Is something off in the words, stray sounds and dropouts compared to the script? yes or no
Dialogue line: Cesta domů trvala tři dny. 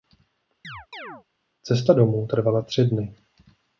yes